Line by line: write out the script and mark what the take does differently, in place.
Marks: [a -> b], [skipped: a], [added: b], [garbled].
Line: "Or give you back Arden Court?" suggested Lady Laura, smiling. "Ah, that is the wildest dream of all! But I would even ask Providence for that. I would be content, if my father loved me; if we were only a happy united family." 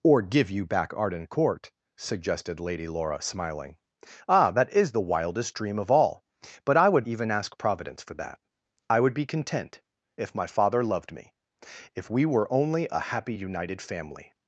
"Or give you back Arden Court?" suggested Lady Laura, smiling. "Ah, that is the wildest dream of all! But I would even ask Providence for that. I would be content, if my father loved me; if we were only a happy united family."